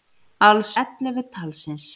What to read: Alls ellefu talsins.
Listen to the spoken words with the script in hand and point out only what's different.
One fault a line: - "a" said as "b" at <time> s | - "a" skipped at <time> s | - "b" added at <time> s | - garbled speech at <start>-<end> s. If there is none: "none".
none